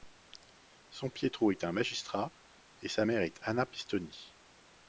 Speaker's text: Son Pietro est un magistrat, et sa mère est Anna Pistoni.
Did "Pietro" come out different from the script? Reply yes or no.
no